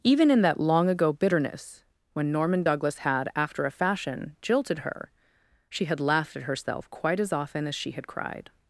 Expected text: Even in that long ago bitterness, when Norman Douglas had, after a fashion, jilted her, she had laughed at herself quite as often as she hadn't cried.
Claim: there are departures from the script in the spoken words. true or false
true